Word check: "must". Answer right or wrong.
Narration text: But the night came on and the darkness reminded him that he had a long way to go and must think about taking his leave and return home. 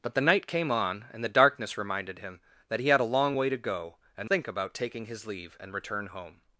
wrong